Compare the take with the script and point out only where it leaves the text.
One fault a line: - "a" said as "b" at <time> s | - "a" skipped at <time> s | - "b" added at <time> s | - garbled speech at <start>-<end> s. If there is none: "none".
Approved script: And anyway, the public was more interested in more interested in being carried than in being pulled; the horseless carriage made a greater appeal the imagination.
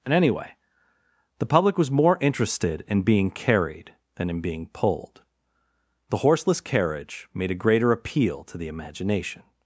- "more interested in" skipped at 3.0 s
- "to" added at 8.4 s